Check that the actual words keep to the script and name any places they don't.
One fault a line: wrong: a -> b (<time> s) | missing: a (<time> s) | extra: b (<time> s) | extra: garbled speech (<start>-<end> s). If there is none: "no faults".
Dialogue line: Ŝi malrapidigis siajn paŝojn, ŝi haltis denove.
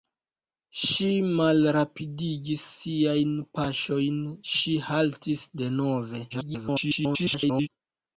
extra: garbled speech (6.3-7.7 s)